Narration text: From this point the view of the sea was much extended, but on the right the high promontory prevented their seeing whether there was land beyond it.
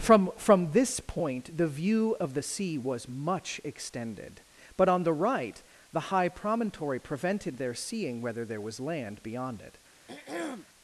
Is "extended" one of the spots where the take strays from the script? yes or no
no